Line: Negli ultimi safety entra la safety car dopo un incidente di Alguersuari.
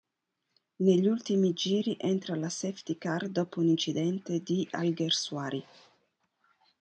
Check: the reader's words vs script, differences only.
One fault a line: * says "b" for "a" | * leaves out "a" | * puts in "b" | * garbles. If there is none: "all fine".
* says "giri" for "safety"